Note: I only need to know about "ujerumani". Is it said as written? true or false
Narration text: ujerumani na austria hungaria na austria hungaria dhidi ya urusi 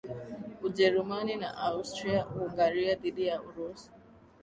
true